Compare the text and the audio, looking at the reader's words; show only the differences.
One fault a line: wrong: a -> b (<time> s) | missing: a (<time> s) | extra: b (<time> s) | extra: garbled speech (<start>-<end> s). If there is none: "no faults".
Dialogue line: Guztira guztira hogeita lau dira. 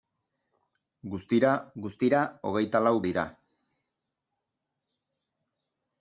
no faults